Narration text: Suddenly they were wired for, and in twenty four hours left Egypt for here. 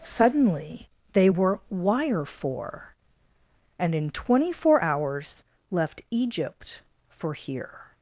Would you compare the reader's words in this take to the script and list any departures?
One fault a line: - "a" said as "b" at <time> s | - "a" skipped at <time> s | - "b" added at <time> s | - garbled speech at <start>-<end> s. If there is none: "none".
- "wired" said as "wire" at 1.7 s